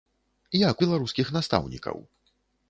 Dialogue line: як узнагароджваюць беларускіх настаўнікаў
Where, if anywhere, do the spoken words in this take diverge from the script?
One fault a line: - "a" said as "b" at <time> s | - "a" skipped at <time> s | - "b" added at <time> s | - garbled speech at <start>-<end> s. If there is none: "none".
- "узнагароджваюць" skipped at 0.8 s